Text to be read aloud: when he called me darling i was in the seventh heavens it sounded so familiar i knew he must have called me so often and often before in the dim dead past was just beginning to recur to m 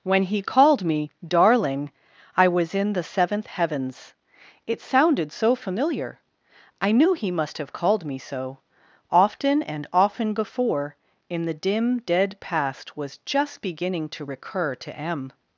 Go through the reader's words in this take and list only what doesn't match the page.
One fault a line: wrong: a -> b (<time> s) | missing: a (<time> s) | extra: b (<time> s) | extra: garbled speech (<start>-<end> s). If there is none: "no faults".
no faults